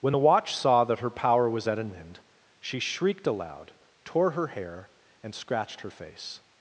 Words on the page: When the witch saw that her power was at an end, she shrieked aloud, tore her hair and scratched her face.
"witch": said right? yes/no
no